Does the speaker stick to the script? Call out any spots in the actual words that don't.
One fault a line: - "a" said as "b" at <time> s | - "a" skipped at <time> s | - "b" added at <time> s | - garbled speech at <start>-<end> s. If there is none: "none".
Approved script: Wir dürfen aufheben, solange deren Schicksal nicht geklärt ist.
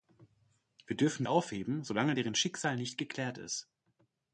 none